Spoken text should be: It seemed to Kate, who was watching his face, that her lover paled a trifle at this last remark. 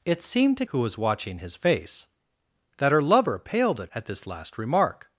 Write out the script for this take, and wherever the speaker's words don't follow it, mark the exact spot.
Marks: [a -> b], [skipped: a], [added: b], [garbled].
It seemed to [skipped: Kate,] who was watching his face, that her lover paled a [skipped: trifle] at this last remark.